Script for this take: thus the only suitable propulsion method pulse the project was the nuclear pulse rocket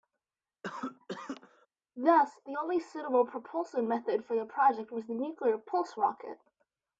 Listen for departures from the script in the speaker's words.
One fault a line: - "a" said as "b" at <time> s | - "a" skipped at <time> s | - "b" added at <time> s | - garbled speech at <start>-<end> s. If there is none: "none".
- "pulse" said as "for" at 4.2 s